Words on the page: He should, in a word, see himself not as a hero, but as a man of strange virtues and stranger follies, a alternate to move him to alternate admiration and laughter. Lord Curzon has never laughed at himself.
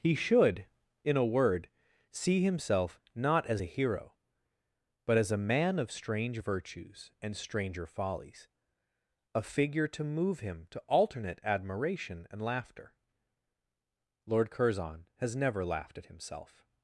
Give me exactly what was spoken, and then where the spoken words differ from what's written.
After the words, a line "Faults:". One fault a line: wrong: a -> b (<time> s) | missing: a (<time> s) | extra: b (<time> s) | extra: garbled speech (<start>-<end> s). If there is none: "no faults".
He should, in a word, see himself not as a hero, but as a man of strange virtues and stranger follies, a figure to move him to alternate admiration and laughter. Lord Curzon has never laughed at himself.
Faults:
wrong: alternate -> figure (9.4 s)